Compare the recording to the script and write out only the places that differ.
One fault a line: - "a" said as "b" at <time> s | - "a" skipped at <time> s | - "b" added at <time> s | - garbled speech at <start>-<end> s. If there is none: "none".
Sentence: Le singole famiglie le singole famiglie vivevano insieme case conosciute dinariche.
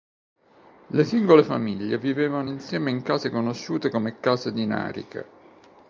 - "le singole famiglie" skipped at 2.0 s
- "in" added at 2.9 s
- "come case" added at 3.9 s